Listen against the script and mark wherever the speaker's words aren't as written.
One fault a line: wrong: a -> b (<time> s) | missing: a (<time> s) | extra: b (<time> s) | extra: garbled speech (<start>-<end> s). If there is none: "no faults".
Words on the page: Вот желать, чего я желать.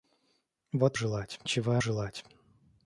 no faults